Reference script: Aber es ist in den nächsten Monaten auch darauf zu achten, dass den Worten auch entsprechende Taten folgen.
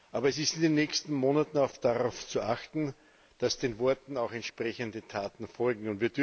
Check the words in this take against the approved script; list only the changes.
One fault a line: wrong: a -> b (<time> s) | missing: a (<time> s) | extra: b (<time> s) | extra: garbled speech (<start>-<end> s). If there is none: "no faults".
no faults